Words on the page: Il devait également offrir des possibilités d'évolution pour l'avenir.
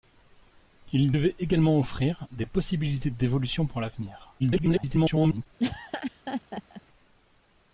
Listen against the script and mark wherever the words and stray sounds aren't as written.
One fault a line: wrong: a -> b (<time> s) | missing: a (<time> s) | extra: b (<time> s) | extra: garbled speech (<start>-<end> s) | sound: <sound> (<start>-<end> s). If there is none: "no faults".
extra: garbled speech (4.4-5.5 s)
sound: laugh (5.6-6.8 s)